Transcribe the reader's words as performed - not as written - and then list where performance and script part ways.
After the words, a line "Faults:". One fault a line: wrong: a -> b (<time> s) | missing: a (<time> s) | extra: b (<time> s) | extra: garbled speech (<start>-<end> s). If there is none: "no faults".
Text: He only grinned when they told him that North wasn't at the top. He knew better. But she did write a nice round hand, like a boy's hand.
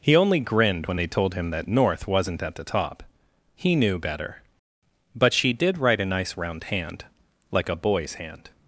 He only grinned when they told him that North wasn't at the top. He knew better. But she did write a nice round hand, like a boy's hand.
Faults:
no faults